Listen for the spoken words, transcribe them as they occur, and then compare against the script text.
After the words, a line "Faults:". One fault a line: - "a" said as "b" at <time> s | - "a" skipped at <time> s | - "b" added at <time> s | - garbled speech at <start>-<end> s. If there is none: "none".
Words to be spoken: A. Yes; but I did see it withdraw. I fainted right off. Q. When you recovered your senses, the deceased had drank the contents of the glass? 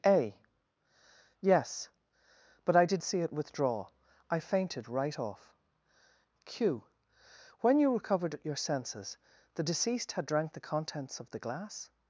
A. Yes; but I did see it withdraw. I fainted right off. Q. When you recovered your senses, the deceased had drank the contents of the glass?
Faults:
none